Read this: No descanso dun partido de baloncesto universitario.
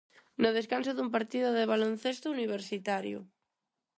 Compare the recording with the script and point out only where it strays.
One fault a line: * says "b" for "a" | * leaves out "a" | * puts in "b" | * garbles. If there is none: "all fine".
all fine